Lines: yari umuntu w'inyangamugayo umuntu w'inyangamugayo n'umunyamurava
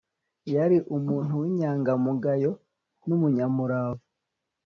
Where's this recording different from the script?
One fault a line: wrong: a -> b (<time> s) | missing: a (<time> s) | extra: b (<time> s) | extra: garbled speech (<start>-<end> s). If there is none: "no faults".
missing: umuntu w'inyangamugayo (2.5 s)